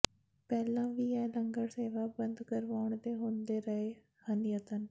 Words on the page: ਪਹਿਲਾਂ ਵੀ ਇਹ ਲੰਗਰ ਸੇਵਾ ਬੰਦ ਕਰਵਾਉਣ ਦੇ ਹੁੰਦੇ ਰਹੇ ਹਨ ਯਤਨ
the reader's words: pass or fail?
pass